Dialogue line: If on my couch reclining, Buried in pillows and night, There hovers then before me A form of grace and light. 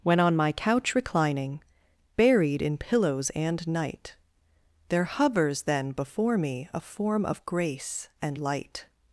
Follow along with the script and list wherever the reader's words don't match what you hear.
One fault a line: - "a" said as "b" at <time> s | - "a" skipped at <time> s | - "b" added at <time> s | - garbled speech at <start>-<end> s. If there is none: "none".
- "If" said as "When" at 0.0 s